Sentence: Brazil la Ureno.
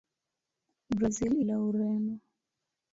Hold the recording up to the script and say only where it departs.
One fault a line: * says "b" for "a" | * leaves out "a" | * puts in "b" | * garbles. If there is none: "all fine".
all fine